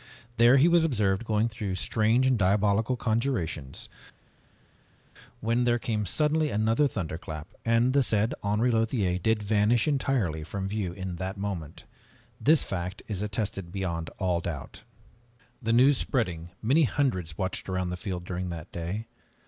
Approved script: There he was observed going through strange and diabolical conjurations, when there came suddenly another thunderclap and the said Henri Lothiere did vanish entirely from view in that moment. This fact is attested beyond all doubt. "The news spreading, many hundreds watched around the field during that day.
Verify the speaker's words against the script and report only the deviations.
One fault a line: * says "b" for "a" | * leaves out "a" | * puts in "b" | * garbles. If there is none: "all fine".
all fine